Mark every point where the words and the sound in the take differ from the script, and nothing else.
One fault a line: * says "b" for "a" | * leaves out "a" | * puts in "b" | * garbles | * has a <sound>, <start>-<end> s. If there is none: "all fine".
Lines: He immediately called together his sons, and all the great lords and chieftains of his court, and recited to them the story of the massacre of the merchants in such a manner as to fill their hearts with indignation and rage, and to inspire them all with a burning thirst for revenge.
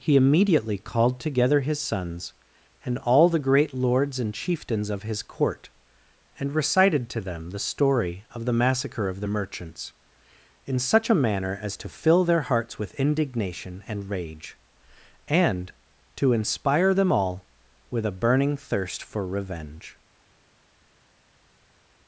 all fine